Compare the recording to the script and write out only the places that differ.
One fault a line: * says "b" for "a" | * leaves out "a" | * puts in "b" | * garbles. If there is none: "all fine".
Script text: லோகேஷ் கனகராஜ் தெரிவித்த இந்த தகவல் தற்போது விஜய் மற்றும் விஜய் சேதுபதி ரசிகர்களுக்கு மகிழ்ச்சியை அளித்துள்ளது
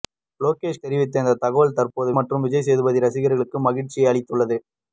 * leaves out "கனகராஜ்"
* leaves out "விஜய்"